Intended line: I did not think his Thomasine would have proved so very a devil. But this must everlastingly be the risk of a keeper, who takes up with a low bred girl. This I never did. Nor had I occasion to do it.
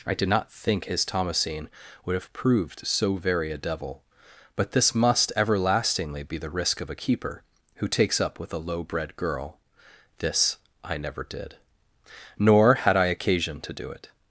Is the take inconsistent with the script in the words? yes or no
no